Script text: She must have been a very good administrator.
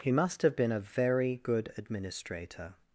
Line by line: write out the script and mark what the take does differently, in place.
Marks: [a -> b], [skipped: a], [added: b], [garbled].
[She -> He] must have been a very good administrator.